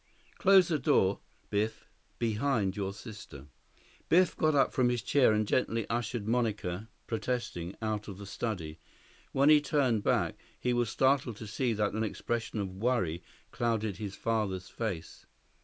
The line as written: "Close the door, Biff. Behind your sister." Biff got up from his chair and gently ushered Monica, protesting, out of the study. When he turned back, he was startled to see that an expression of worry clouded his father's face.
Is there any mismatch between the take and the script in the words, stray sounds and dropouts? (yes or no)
no